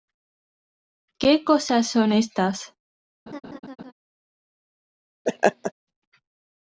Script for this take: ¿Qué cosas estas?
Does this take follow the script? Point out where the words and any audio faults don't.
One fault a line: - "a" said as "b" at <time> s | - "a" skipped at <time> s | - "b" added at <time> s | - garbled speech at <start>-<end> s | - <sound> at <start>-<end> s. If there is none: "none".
- "son" added at 1.9 s
- laugh at 3.3-3.9 s
- laugh at 5.3-5.7 s